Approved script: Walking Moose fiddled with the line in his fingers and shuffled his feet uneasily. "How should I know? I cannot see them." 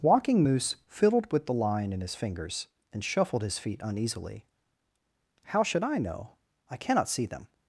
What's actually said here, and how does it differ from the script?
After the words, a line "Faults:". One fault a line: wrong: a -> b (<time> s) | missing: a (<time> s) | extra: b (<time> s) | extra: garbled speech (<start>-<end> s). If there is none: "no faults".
Walking Moose fiddled with the line in his fingers and shuffled his feet uneasily. "How should I know? I cannot see them."
Faults:
no faults